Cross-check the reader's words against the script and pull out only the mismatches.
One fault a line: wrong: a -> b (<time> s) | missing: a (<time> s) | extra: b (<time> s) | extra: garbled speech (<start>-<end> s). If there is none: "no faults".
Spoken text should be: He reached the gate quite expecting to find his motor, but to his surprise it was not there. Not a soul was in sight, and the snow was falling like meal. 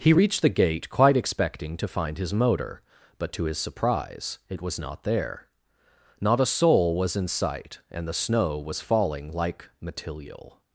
wrong: meal -> material (9.8 s)